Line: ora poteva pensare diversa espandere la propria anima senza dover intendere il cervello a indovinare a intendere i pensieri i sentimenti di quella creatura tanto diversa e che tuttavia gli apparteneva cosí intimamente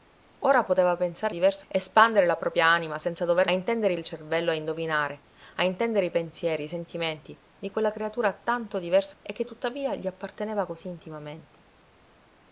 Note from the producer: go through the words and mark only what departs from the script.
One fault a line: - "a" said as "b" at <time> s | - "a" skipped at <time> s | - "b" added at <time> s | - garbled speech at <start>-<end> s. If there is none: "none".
none